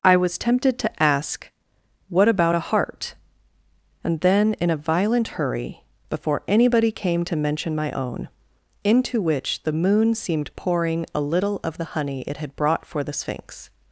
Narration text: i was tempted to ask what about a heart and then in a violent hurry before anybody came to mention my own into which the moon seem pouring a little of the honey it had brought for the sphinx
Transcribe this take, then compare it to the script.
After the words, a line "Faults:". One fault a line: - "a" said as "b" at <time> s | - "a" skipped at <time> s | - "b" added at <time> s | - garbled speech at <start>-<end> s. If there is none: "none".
i was tempted to ask what about a heart and then in a violent hurry before anybody came to mention my own into which the moon seemed pouring a little of the honey it had brought for the sphinx
Faults:
- "seem" said as "seemed" at 10.1 s